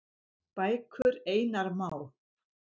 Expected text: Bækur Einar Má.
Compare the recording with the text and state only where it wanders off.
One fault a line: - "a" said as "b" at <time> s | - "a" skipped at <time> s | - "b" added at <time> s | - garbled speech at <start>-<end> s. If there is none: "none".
none